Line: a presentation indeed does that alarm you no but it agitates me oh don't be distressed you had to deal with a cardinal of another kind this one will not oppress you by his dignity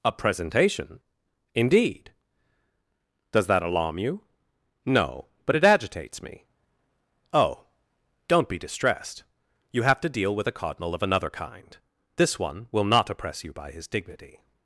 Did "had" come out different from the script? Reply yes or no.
yes